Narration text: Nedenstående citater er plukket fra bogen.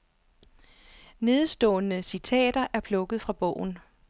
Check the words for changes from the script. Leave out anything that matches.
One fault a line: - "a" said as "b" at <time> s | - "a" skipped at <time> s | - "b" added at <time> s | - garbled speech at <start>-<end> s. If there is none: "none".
none